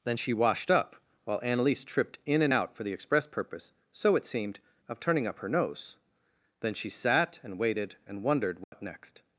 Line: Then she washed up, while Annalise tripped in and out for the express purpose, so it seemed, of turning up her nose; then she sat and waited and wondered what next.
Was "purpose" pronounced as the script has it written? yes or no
yes